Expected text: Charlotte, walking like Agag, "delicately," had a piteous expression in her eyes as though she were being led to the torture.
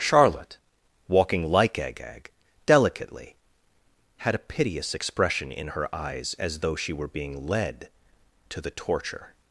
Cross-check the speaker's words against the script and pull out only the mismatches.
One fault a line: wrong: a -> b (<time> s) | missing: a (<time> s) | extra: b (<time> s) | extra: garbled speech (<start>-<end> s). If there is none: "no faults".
no faults